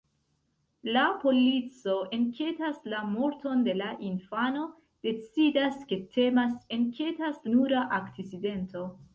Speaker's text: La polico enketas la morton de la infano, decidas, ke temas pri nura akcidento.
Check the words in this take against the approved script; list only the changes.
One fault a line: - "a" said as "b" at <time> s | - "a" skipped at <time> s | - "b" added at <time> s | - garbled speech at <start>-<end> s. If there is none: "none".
- "pri" said as "enketas" at 6.8 s